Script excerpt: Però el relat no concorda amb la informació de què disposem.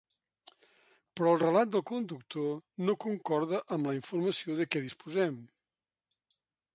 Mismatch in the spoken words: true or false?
true